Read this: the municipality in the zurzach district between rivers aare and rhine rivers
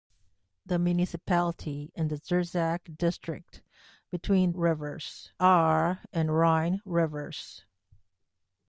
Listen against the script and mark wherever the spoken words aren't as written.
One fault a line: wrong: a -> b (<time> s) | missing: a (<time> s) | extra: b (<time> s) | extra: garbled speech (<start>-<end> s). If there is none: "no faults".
no faults